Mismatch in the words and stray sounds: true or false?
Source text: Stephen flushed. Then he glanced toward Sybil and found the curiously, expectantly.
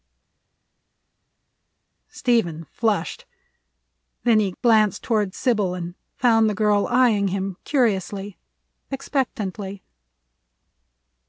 true